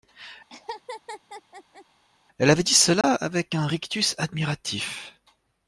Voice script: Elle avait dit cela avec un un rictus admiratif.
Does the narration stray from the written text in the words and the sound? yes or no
yes